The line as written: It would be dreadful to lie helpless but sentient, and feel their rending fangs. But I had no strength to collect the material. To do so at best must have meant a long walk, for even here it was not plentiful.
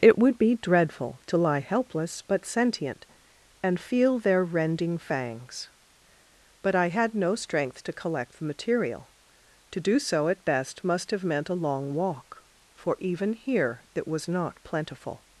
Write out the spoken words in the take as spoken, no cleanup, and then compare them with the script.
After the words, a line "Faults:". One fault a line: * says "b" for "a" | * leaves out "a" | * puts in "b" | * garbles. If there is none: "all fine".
It would be dreadful to lie helpless but sentient, and feel their rending fangs. But I had no strength to collect the material. To do so at best must have meant a long walk, for even here it was not plentiful.
Faults:
all fine